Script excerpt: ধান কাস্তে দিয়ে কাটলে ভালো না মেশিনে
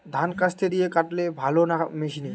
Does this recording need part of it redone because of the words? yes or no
no